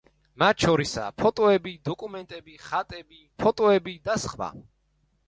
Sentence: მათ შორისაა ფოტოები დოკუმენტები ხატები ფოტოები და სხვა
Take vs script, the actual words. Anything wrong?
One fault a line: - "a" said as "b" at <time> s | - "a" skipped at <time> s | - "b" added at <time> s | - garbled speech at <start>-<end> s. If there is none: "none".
none